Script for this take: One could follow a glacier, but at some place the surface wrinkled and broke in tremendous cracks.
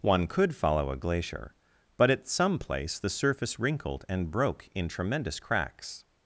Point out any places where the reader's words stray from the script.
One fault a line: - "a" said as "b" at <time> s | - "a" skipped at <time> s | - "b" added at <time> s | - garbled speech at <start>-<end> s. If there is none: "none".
none